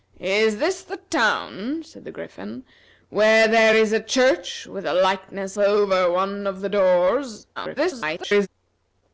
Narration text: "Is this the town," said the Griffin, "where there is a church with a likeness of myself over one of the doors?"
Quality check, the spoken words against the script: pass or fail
fail